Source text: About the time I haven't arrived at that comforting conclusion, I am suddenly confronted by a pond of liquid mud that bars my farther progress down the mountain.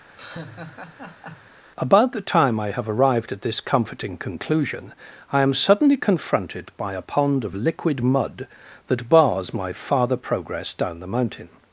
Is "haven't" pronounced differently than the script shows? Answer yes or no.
yes